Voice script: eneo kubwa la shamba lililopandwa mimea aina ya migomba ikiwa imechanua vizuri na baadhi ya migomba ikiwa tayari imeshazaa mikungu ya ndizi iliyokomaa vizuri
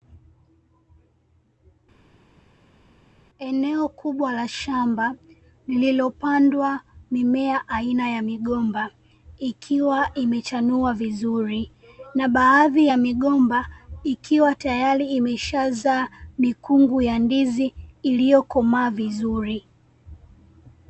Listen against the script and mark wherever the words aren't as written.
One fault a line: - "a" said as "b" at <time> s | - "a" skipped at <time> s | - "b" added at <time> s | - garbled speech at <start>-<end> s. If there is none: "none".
none